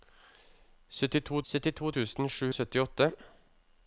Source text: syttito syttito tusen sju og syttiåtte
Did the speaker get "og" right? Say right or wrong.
right